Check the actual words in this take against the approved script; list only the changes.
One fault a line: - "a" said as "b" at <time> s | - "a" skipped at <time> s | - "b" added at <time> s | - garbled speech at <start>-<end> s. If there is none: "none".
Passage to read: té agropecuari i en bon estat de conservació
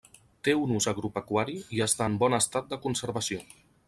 - "un ús" added at 0.6 s
- "està" added at 1.9 s